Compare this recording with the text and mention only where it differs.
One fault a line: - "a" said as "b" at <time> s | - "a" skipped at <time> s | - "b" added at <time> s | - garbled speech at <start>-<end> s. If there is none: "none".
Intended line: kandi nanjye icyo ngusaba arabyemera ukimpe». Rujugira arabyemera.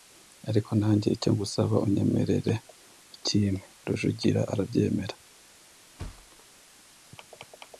- "kandi" said as "ariko" at 0.5 s
- "arabyemera" said as "unyemerere" at 1.9 s